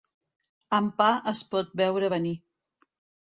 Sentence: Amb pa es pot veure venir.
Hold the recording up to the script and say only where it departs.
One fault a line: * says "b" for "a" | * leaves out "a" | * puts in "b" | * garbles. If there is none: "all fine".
all fine